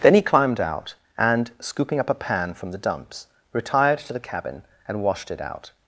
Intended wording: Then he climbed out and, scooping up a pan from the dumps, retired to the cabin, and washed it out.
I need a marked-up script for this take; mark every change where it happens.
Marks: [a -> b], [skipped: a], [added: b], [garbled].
Then he climbed out and, scooping up a pan from the dumps, retired to the cabin, and washed it out.